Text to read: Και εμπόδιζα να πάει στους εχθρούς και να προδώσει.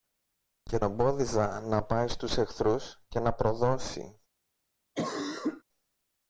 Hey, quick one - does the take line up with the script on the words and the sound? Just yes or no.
no